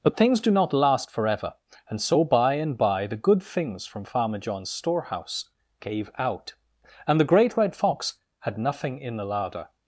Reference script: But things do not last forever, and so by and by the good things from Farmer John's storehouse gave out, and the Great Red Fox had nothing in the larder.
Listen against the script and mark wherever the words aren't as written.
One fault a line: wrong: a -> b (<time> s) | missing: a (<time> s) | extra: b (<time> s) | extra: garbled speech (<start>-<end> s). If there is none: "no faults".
no faults